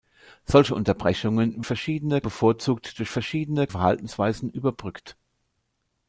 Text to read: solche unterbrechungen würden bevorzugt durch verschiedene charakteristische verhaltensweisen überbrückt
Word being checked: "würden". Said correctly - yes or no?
no